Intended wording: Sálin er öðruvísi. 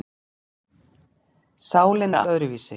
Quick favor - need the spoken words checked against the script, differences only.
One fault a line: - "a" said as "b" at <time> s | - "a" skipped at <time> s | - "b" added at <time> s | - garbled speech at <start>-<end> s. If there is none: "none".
none